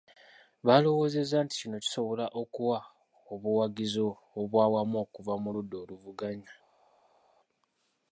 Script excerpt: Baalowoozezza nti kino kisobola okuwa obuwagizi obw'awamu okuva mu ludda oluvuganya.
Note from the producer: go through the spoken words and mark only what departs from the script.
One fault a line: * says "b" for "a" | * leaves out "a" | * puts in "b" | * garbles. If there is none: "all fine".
all fine